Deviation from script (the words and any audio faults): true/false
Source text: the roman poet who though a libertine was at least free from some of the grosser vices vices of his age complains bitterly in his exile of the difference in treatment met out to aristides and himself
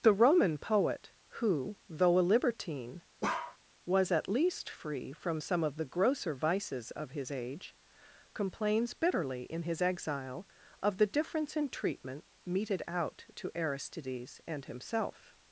true